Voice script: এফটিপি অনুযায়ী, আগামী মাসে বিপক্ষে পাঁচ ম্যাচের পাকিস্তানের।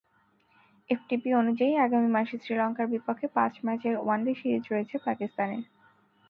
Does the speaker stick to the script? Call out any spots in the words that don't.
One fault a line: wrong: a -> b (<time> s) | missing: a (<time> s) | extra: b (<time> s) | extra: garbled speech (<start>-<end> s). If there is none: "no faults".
extra: শ্রীলঙ্কার (2.4 s)
extra: ওয়ানডে সিরিজ রয়েছে (4.0 s)